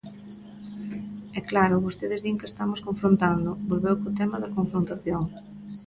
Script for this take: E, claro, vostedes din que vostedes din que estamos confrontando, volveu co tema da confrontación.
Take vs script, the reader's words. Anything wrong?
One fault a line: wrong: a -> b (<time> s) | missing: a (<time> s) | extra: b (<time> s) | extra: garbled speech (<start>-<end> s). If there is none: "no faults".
missing: vostedes din que (2.5 s)